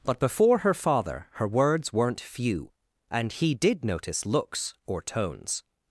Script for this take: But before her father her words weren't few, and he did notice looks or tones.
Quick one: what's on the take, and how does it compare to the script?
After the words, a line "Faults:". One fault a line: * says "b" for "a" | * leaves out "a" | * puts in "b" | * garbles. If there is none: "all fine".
But before her father her words weren't few, and he did notice looks or tones.
Faults:
all fine